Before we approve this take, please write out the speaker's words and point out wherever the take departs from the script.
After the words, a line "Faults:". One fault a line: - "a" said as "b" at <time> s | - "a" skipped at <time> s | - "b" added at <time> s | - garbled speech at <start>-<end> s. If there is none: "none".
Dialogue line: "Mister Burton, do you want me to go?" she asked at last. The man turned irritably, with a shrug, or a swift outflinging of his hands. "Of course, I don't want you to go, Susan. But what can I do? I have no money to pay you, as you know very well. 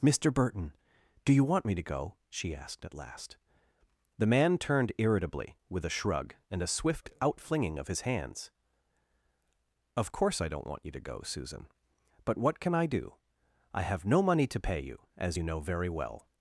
"Mister Burton, do you want me to go?" she asked at last. The man turned irritably, with a shrug, and a swift outflinging of his hands. "Of course, I don't want you to go, Susan. But what can I do? I have no money to pay you, as you know very well.
Faults:
- "or" said as "and" at 6.5 s